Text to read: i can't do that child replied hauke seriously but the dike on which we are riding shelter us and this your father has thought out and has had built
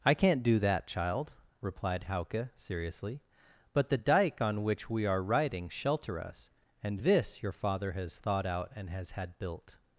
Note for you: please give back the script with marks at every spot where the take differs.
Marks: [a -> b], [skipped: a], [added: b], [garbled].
i can't do that child replied hauke seriously but the dike on which we are riding shelter us and this your father has thought out and has had built